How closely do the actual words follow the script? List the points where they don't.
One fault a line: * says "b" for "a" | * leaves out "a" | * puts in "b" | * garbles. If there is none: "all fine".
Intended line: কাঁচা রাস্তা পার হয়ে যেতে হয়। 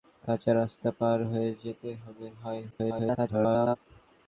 * garbles